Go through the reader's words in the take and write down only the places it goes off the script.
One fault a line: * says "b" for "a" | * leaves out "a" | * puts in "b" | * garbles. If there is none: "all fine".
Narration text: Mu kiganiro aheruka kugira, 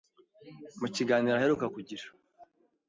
all fine